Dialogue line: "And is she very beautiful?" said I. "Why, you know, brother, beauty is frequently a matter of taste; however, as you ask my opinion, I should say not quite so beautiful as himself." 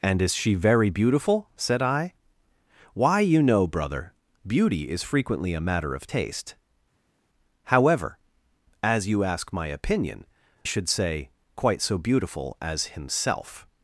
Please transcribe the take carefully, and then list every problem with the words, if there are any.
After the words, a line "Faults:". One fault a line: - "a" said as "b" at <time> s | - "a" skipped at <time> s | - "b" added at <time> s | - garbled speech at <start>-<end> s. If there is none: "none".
"And is she very beautiful?" said I. "Why, you know, brother, beauty is frequently a matter of taste; however, as you ask my opinion, should say quite so beautiful as himself."
Faults:
- "I" skipped at 10.3 s
- "not" skipped at 11.3 s